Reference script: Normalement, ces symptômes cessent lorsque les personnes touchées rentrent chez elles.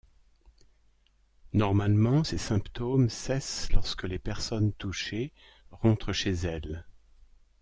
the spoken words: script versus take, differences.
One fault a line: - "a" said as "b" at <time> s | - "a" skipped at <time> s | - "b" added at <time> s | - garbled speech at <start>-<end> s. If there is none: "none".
none